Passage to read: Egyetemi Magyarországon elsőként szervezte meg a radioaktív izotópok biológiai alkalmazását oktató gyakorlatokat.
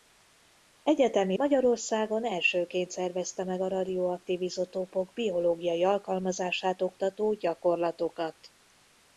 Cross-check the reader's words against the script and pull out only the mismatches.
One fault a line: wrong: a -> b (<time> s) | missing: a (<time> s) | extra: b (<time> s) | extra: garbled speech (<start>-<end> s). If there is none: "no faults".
no faults